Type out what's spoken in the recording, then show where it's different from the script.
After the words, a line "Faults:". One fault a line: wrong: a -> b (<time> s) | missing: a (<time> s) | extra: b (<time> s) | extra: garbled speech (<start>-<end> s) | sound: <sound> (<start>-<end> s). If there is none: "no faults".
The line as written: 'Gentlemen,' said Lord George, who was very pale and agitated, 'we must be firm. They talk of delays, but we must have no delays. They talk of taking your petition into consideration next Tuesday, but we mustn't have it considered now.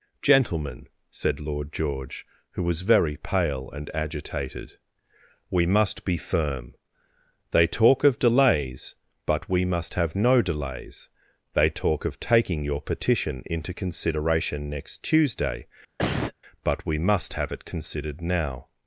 'Gentlemen,' said Lord George, who was very pale and agitated, 'we must be firm. They talk of delays, but we must have no delays. They talk of taking your petition into consideration next Tuesday, but we must have it considered now.
Faults:
sound: cough (16.0-16.3 s)
wrong: mustn't -> must (17.0 s)